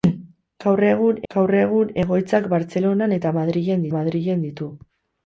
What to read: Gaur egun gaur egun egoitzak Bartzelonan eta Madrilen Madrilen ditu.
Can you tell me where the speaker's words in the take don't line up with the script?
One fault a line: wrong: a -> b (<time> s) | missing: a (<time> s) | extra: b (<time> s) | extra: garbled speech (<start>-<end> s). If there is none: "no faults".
no faults